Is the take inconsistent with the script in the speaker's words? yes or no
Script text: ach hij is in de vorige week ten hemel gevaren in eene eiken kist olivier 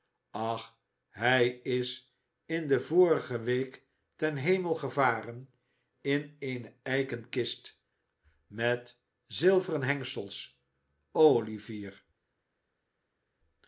yes